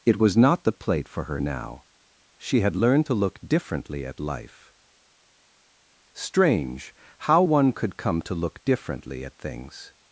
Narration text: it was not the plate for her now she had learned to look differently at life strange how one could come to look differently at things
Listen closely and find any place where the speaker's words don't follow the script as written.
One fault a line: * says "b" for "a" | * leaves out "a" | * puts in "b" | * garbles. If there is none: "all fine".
all fine